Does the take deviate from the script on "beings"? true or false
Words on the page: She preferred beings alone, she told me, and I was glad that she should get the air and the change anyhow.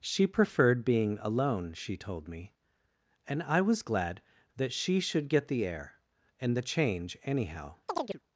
true